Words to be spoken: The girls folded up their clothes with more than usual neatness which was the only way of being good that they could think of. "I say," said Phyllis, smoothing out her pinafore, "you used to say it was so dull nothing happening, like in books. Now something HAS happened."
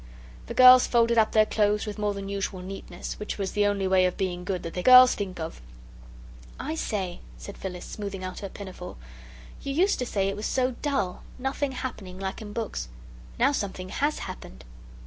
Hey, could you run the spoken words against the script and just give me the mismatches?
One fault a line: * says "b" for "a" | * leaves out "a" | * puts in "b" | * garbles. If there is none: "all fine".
* says "girls" for "could"